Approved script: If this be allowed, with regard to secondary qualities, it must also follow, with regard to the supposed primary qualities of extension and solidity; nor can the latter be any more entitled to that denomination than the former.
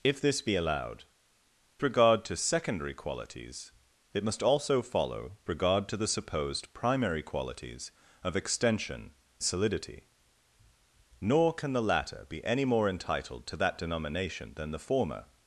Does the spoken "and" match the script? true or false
false